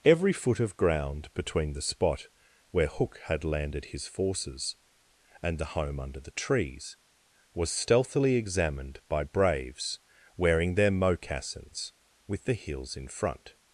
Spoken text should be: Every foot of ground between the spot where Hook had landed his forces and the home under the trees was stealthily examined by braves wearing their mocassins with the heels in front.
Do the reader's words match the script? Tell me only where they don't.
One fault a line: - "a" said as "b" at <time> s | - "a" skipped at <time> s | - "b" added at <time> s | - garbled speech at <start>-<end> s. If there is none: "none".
none